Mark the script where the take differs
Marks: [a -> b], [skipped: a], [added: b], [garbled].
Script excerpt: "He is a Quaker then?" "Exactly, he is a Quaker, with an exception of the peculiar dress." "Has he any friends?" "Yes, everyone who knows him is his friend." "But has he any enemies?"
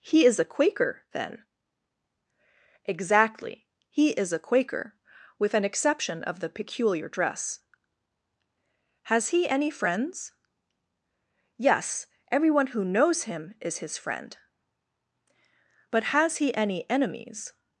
"He is a Quaker then?" "Exactly, he is a Quaker, with an exception of the peculiar dress." "Has he any friends?" "Yes, everyone who knows him is his friend." "But has he any enemies?"